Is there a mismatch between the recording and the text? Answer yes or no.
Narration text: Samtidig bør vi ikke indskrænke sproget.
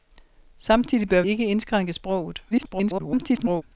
yes